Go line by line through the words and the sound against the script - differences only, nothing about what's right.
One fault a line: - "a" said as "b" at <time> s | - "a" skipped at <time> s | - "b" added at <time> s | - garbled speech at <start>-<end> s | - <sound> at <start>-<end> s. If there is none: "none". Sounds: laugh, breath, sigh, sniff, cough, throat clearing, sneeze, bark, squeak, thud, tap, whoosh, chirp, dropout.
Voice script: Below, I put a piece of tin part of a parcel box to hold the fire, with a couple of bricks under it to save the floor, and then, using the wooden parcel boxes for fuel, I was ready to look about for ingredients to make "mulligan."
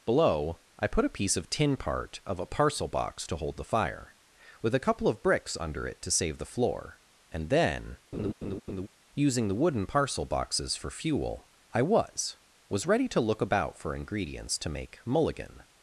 - laugh at 8.1-8.9 s
- "was" added at 12.7 s